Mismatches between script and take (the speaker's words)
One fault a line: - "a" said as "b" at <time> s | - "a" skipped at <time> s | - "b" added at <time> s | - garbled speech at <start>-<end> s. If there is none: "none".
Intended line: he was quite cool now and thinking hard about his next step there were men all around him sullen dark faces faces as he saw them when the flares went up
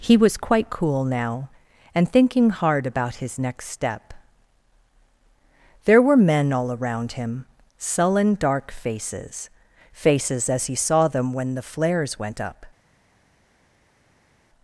none